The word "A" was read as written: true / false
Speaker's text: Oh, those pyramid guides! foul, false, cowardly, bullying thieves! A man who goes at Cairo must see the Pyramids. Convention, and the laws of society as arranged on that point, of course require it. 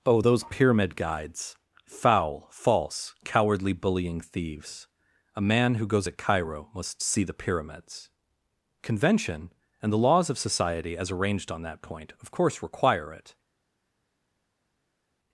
true